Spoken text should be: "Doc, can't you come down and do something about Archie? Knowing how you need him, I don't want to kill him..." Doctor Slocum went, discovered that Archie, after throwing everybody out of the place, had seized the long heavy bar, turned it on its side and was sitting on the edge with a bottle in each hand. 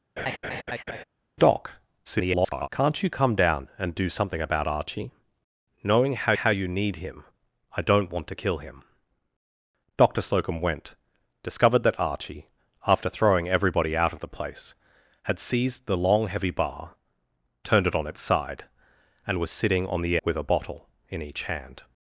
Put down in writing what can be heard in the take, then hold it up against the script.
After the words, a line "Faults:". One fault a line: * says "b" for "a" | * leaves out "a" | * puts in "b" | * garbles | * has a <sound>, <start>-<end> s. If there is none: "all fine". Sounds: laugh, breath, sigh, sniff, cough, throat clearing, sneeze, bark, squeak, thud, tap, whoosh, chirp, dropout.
"Doc, [garbled] can't you come down and do something about Archie? Knowing how how you need him, I don't want to kill him..." Doctor Slocum went, discovered that Archie, after throwing everybody out of the place, had seized the long heavy bar, turned it on its side and was sitting on the with a bottle in each hand.
Faults:
* has a laugh, 0.2-1.0 s
* garbles
* puts in "how"
* leaves out "edge"